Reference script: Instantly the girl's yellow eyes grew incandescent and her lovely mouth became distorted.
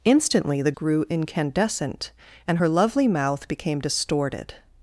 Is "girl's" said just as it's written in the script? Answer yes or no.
no